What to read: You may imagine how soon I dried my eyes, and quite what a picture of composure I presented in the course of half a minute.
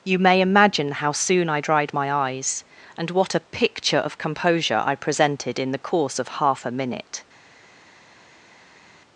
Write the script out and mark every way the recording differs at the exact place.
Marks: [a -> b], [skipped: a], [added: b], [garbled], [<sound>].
You may imagine how soon I dried my eyes, and [skipped: quite] what a picture of composure I presented in the course of half a minute.